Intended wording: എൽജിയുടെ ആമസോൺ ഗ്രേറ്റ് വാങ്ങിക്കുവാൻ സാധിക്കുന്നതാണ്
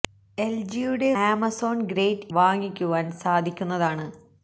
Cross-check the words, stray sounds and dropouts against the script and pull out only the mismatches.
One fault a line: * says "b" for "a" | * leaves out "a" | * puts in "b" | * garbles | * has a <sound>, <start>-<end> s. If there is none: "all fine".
all fine